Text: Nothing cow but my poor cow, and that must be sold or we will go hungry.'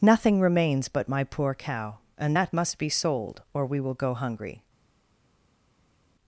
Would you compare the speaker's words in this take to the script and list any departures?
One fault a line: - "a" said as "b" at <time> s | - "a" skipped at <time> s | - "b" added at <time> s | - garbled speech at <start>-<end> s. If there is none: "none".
- "cow" said as "remains" at 0.4 s